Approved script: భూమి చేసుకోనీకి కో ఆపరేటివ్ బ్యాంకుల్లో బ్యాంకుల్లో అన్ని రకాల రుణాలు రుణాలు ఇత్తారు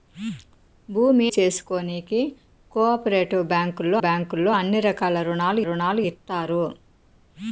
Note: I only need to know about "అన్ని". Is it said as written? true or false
true